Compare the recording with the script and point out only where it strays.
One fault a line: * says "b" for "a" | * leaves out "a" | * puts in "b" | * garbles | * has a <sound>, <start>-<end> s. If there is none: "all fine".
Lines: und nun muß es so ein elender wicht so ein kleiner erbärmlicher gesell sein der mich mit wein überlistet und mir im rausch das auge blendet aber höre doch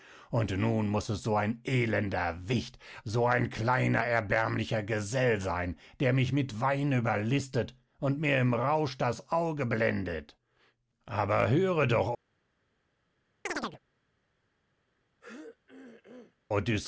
* has a chirp, 13.5-13.8 s
* has a throat clearing, 15.2-16.4 s